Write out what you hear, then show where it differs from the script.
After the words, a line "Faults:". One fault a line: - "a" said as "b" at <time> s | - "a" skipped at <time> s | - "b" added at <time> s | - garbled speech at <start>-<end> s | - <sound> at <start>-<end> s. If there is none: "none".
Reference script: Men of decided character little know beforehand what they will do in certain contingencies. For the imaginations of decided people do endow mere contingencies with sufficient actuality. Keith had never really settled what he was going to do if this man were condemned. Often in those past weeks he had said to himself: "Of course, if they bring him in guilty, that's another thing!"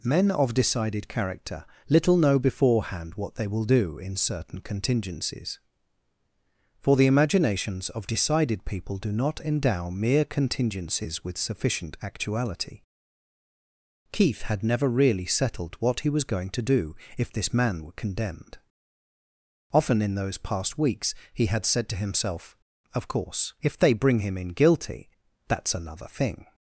Men of decided character little know beforehand what they will do in certain contingencies. For the imaginations of decided people do not endow mere contingencies with sufficient actuality. Keith had never really settled what he was going to do if this man were condemned. Often in those past weeks he had said to himself: "Of course, if they bring him in guilty, that's another thing!"
Faults:
- "not" added at 9.1 s